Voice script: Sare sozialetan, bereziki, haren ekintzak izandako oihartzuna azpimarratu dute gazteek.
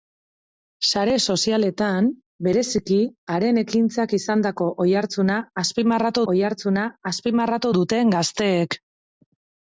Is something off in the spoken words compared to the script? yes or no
yes